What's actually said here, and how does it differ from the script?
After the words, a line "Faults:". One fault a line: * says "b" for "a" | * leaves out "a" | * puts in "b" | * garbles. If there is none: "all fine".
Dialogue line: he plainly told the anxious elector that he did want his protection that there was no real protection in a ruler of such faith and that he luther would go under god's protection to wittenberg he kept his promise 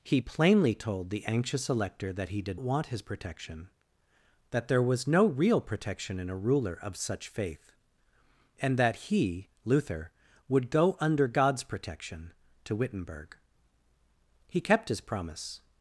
he plainly told the anxious elector that he did want his protection that there was no real protection in a ruler of such faith and that he luther would go under god's protection to wittenberg he kept his promise
Faults:
all fine